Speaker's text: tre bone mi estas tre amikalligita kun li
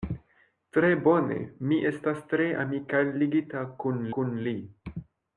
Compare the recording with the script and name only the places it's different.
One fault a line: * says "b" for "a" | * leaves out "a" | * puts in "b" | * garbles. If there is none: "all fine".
* puts in "kun"